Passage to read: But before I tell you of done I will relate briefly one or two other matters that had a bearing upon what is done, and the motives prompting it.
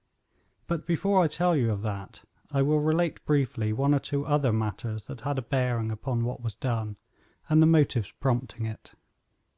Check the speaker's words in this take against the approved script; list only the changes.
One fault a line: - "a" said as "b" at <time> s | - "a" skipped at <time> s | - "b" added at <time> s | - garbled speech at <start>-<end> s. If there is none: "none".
- "done" said as "that" at 1.8 s
- "is" said as "was" at 6.4 s